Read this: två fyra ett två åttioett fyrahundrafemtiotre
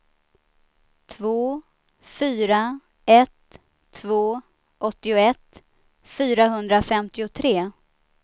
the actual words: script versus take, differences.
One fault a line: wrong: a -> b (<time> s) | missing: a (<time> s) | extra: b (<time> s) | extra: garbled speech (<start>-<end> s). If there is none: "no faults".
no faults